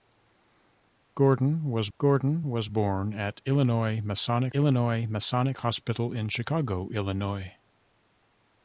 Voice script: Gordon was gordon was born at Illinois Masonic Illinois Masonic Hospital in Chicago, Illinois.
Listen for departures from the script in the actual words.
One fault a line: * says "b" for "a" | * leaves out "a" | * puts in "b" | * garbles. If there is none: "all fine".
all fine